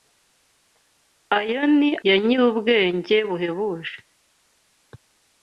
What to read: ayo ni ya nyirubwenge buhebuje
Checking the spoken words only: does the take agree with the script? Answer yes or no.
yes